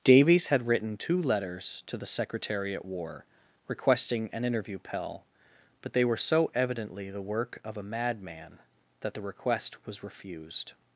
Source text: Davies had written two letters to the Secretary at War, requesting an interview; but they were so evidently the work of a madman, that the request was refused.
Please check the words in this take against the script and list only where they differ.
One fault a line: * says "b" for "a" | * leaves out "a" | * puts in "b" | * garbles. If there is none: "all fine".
* puts in "pell"